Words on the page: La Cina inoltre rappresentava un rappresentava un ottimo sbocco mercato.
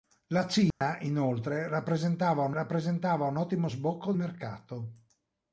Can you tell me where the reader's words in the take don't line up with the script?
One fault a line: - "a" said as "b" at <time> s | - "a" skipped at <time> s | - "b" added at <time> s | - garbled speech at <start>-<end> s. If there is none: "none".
none